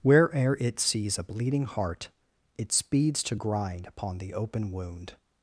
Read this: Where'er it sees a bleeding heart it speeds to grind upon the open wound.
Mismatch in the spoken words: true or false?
false